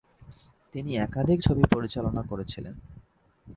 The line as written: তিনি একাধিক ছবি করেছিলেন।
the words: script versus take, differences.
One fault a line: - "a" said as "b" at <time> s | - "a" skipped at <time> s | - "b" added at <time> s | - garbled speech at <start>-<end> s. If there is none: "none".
- "পরিচালনা" added at 1.7 s